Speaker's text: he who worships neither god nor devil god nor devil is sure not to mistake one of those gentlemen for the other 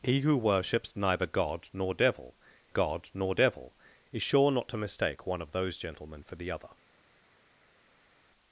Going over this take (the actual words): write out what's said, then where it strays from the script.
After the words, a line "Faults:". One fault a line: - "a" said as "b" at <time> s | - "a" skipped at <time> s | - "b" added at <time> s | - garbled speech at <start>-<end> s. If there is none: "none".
he who worships neither god nor devil god nor devil is sure not to mistake one of those gentlemen for the other
Faults:
none